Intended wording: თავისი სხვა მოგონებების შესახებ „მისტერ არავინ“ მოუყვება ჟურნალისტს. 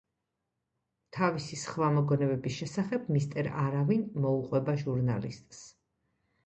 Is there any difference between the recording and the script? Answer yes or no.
no